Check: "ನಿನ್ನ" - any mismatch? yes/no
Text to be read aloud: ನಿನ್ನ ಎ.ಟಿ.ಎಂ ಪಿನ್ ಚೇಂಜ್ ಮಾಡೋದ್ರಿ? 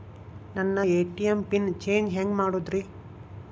yes